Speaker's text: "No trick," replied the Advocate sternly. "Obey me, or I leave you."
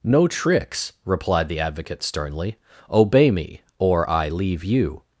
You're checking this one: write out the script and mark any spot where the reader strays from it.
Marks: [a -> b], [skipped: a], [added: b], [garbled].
"No [trick," -> tricks] replied the Advocate sternly. "Obey me, or I leave you."